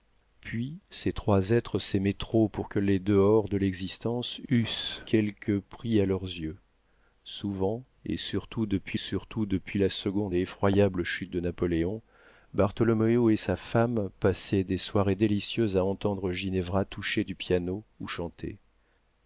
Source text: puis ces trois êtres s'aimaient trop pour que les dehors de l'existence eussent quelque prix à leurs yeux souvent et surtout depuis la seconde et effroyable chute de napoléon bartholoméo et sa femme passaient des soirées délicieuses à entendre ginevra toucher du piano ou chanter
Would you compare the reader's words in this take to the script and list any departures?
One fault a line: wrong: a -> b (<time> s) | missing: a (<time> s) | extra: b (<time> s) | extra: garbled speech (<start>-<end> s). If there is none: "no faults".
extra: surtout depuis (9.0 s)